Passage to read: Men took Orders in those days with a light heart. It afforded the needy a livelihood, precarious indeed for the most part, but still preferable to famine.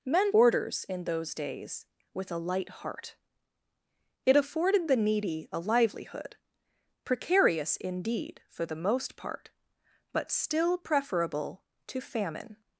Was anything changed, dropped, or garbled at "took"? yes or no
yes